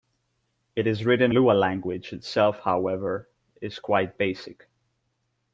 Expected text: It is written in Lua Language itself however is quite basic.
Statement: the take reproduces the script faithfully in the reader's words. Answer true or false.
false